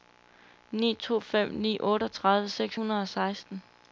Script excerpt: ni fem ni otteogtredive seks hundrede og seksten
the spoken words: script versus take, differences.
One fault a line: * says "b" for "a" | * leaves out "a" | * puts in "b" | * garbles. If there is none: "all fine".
* puts in "to"